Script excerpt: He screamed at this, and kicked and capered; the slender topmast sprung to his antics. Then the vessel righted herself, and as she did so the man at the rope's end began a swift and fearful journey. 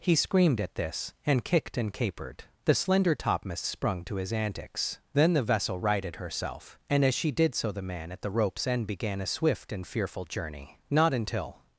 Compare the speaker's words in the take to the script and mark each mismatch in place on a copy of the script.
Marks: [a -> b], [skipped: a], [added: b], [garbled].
He screamed at this, and kicked and capered; the slender topmast sprung to his antics. Then the vessel righted herself, and as she did so the man at the rope's end began a swift and fearful journey. [added: Not until]